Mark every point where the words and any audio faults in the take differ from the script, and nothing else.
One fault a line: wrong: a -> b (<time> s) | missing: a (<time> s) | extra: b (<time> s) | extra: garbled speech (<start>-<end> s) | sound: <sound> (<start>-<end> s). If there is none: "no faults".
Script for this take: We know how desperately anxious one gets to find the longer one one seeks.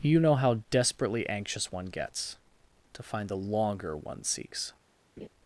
wrong: We -> You (0.0 s)
missing: one (4.2 s)
sound: laugh (5.2-5.3 s)